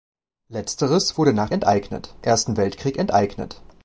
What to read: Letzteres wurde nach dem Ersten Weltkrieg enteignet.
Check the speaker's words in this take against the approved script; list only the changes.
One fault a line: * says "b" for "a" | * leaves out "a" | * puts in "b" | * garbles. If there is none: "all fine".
* says "enteignet" for "dem"